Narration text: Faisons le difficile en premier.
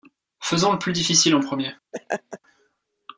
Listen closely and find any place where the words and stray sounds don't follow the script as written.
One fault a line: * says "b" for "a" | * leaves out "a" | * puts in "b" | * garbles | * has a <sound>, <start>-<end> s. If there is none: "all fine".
* puts in "plus"
* has a laugh, 1.9-2.4 s